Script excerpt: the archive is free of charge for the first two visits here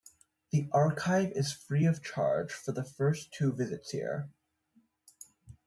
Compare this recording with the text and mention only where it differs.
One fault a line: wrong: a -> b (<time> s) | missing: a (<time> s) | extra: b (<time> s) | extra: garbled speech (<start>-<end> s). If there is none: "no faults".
no faults